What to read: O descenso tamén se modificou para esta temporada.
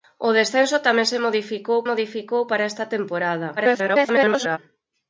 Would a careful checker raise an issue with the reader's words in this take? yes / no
yes